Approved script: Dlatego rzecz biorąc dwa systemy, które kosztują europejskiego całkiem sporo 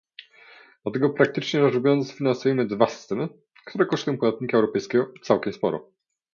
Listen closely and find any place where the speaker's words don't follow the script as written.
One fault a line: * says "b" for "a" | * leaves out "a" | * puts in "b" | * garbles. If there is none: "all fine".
* puts in "praktycznie"
* puts in "finansujemy"
* puts in "podatnika"